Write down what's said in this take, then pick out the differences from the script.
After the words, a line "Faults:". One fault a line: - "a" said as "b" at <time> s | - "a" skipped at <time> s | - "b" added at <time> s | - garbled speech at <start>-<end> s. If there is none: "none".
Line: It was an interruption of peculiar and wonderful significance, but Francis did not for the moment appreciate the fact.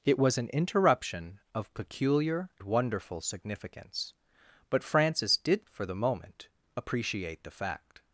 It was an interruption of peculiar wonderful significance, but Francis did for the moment appreciate the fact.
Faults:
- "and" skipped at 2.5 s
- "not" skipped at 5.6 s